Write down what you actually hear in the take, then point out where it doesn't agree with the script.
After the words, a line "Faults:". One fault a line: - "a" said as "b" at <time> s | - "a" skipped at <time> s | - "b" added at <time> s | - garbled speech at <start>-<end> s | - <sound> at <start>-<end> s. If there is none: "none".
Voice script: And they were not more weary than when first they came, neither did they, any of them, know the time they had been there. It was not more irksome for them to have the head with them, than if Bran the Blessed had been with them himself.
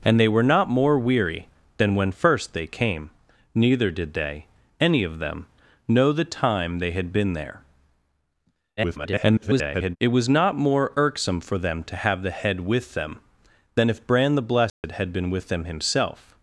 And they were not more weary than when first they came, neither did they, any of them, know the time they had been there. [garbled] It was not more irksome for them to have the head with them, than if Bran the Blessed had been with them himself.
Faults:
- garbled speech at 8.8-10.0 s
- dropout at 14.7-14.8 s